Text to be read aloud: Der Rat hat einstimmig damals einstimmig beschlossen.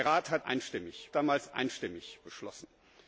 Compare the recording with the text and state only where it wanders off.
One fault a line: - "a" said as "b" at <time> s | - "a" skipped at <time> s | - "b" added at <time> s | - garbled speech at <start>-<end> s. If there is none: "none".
none